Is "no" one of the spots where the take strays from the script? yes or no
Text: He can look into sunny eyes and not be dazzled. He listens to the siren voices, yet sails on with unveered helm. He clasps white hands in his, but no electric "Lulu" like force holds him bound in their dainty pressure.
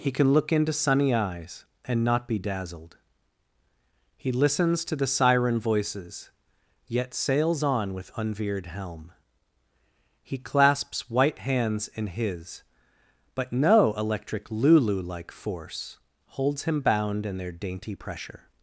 no